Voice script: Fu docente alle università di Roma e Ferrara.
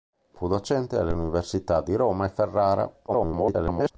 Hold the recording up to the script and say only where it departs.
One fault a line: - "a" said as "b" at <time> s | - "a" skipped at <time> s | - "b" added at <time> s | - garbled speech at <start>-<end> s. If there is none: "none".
- garbled speech at 3.1-3.9 s